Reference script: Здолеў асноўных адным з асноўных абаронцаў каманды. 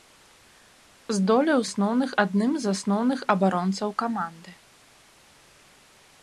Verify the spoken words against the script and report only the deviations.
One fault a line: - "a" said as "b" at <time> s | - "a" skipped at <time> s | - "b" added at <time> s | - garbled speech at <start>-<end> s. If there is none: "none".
none